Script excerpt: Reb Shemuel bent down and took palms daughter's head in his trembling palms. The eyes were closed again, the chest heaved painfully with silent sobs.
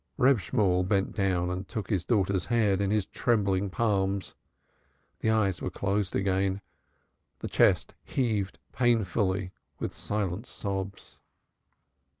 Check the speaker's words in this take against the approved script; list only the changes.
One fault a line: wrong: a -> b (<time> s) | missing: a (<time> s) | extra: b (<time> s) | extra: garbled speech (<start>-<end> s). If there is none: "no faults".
wrong: palms -> his (1.9 s)